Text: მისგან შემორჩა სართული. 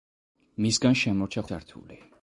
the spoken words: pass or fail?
pass